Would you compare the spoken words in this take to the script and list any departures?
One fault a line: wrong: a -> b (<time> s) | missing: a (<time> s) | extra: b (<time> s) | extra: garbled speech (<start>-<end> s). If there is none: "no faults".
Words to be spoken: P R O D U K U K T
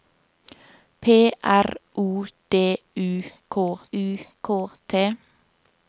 no faults